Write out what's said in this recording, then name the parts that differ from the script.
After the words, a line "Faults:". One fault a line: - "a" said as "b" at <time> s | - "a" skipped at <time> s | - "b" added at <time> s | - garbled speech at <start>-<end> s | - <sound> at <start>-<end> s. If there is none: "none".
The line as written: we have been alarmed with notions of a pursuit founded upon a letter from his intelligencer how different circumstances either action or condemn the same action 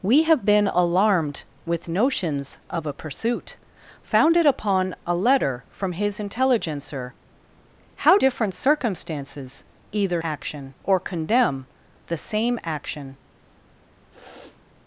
we have been alarmed with notions of a pursuit founded upon a letter from his intelligencer how different circumstances either action or condemn the same action
Faults:
- sniff at 14.1-14.6 s